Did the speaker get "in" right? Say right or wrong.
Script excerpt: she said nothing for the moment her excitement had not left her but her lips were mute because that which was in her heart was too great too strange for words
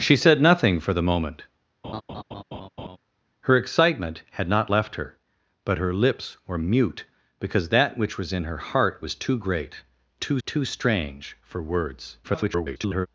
right